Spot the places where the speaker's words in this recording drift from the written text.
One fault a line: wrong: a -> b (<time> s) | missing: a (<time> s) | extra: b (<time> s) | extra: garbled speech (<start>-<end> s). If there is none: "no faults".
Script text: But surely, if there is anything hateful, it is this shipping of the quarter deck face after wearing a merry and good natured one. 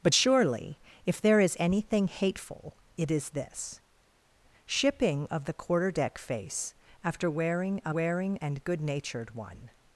wrong: merry -> wearing (7.9 s)